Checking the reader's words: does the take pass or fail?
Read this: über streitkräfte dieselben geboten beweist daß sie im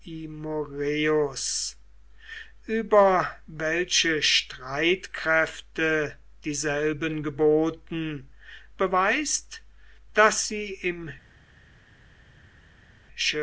fail